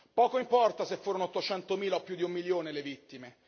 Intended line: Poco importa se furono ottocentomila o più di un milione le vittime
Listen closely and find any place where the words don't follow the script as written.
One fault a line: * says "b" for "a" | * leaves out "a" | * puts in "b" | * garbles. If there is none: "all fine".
all fine